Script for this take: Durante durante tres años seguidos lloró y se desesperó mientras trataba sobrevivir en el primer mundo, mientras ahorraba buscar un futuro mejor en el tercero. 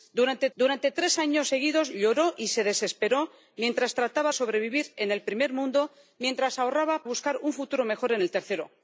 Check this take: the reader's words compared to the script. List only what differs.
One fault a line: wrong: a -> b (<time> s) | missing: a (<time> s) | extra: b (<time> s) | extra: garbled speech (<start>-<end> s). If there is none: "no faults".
no faults